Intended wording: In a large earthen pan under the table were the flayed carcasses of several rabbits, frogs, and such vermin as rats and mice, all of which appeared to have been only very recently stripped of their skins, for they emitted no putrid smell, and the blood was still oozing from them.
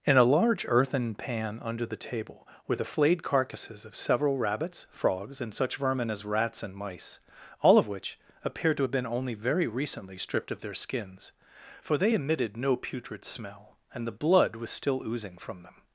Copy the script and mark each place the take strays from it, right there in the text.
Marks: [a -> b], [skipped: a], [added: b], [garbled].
In a large earthen pan under the table were the flayed carcasses of several rabbits, frogs, and such vermin as rats and mice, all of which appeared to have been only very recently stripped of their skins, for they emitted no putrid smell, and the blood was still oozing from them.